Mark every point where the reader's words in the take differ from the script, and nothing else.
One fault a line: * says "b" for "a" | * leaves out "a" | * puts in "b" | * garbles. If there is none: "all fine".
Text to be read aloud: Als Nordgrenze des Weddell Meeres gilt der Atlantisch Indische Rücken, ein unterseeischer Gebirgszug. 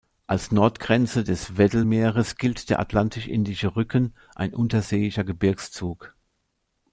all fine